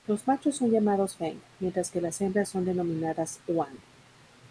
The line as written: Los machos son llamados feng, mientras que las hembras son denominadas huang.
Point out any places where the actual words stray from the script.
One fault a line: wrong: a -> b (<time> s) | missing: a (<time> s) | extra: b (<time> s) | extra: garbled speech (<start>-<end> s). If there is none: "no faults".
no faults